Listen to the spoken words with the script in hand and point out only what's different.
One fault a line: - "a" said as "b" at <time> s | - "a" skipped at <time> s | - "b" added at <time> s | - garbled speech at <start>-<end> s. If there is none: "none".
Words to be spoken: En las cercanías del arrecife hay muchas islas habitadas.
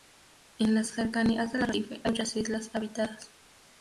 none